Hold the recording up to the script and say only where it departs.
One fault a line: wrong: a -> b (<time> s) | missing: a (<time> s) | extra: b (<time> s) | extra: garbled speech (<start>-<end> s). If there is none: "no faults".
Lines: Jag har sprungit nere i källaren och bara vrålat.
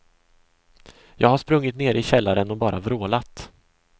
no faults